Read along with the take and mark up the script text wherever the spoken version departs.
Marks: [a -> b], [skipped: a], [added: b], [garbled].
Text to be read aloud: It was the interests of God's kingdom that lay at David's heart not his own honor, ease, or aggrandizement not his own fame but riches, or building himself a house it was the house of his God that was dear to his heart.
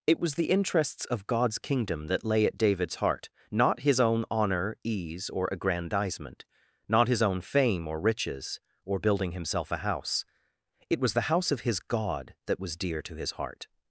It was the interests of God's kingdom that lay at David's heart not his own honor, ease, or aggrandizement not his own fame [but -> or] riches, or building himself a house it was the house of his God that was dear to his heart.